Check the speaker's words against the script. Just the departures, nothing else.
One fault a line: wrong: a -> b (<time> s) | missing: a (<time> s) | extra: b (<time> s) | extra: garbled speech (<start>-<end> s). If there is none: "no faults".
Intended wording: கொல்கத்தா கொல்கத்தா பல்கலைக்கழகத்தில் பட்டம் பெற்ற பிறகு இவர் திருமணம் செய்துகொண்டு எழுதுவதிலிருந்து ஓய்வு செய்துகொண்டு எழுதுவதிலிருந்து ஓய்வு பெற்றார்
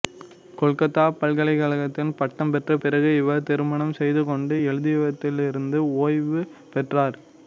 missing: கொல்கத்தா (1.0 s)
missing: செய்துகொண்டு எழுதுவதிலிருந்து ஓய்வு (6.4 s)